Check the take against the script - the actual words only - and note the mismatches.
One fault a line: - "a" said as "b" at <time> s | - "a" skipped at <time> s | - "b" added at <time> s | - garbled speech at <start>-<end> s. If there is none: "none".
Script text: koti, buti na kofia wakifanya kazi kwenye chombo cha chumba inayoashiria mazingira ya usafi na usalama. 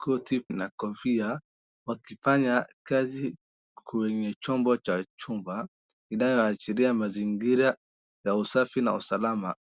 - "buti" skipped at 0.5 s